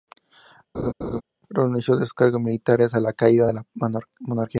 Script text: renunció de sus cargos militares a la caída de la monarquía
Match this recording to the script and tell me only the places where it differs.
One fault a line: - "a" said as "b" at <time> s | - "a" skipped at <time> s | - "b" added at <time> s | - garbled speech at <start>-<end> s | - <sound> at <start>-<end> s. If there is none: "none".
- laugh at 0.7-1.2 s